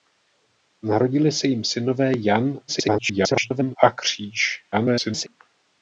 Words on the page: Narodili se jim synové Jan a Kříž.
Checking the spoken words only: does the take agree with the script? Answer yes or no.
no